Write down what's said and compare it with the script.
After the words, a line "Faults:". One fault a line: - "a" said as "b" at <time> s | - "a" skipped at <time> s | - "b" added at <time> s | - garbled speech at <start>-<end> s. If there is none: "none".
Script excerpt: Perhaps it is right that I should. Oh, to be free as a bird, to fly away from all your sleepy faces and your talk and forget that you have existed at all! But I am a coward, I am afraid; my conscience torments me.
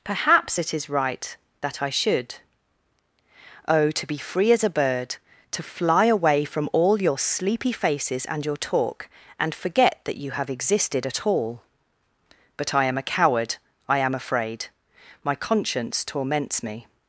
Perhaps it is right that I should. Oh, to be free as a bird, to fly away from all your sleepy faces and your talk and forget that you have existed at all! But I am a coward, I am afraid; my conscience torments me.
Faults:
none